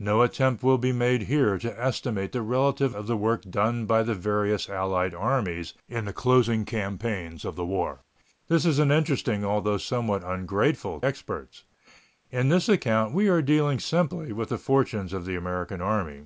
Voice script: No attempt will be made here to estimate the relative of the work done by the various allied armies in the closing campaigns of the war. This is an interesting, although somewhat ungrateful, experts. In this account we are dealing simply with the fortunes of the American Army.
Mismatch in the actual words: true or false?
false